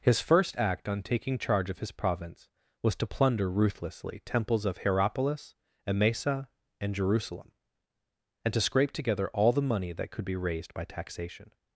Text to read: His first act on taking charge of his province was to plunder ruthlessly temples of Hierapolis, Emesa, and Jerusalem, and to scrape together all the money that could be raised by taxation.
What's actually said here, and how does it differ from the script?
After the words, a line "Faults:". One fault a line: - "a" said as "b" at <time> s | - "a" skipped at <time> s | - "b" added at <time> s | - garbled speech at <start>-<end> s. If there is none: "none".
His first act on taking charge of his province was to plunder ruthlessly temples of Hierapolis, Emesa, and Jerusalem, and to scrape together all the money that could be raised by taxation.
Faults:
none